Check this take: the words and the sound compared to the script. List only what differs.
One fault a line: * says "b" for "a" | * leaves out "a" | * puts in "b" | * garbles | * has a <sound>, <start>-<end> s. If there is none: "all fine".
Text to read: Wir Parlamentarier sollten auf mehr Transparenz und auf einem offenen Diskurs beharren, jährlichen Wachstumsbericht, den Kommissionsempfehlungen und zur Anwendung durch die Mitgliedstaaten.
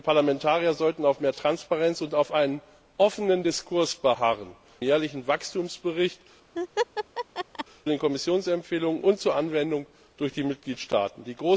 * has a laugh, 6.5-7.6 s